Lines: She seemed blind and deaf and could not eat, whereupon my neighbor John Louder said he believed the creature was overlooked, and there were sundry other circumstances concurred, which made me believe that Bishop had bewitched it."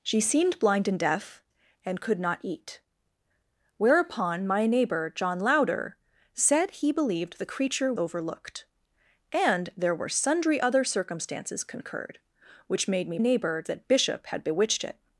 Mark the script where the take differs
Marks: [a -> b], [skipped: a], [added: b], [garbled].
She seemed blind and deaf and could not eat, whereupon my neighbor John Louder said he believed the creature [skipped: was] overlooked, and there were sundry other circumstances concurred, which made me [believe -> neighbor] that Bishop had bewitched it."